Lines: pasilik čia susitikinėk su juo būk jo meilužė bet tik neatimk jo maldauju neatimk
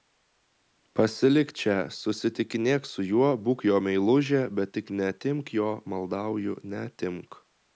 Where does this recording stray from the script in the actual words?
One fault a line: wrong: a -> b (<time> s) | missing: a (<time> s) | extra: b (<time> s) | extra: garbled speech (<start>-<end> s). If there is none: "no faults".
no faults